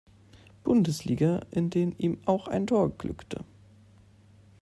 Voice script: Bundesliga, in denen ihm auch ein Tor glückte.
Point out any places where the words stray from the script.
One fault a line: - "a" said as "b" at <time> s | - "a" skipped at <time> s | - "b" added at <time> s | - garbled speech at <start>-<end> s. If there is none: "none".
none